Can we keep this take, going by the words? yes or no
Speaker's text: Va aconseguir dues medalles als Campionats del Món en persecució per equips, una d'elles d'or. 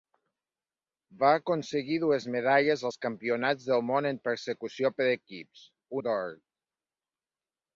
no